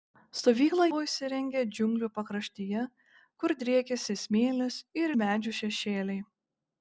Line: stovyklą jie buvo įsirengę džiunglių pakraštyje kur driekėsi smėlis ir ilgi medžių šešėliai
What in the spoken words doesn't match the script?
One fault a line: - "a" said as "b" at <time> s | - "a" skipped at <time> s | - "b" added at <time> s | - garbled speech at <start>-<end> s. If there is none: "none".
- "jie" skipped at 0.8 s
- "ilgi" skipped at 5.1 s